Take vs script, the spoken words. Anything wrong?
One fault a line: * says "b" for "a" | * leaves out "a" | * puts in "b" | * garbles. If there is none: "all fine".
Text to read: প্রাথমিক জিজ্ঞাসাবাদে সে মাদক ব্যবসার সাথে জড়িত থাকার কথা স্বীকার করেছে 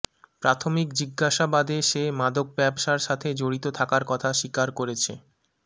all fine